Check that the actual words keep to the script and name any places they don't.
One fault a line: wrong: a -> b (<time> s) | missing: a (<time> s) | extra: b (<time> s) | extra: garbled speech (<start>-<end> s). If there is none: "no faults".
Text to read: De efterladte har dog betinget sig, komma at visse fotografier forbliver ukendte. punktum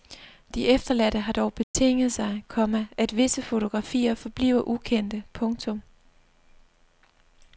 no faults